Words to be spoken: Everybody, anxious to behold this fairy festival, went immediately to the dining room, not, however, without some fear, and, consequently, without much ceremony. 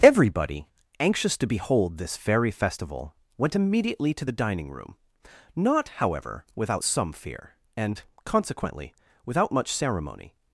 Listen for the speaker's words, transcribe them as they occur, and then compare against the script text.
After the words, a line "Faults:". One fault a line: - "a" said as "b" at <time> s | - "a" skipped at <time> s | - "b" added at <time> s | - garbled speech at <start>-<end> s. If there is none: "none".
Everybody, anxious to behold this fairy festival, went immediately to the dining room, not, however, without some fear, and, consequently, without much ceremony.
Faults:
none